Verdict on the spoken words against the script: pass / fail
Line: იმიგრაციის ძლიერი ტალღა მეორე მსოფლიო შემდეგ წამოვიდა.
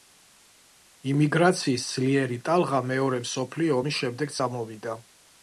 fail